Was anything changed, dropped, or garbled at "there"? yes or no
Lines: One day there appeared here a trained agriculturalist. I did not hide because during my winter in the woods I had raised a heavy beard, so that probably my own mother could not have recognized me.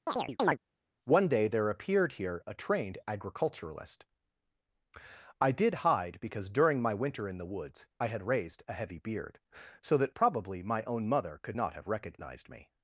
no